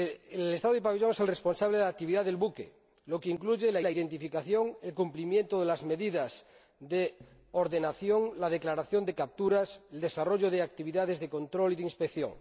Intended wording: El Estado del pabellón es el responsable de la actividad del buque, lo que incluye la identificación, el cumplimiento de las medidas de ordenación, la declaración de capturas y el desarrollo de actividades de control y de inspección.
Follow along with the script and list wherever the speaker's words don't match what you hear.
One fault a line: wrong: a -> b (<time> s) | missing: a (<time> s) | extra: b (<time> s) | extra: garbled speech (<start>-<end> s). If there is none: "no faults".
extra: la (3.8 s)